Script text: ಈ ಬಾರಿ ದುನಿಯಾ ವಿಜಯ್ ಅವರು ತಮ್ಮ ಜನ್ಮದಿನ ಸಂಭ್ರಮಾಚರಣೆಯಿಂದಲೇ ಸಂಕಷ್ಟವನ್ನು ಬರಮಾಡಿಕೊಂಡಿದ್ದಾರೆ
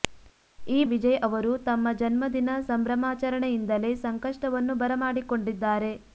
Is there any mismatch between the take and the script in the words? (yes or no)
yes